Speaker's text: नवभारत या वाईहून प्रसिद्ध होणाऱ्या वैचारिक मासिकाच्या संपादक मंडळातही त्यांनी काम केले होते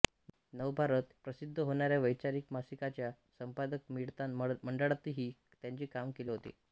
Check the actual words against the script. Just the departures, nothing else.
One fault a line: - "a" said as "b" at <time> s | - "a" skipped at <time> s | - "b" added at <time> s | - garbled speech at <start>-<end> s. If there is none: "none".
- "या वाईहून" skipped at 1.1 s